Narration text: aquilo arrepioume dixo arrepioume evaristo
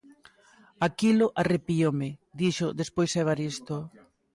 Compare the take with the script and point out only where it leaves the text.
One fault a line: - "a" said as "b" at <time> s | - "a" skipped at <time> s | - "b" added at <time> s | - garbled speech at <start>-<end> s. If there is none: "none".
- "arrepioume" said as "despois" at 2.8 s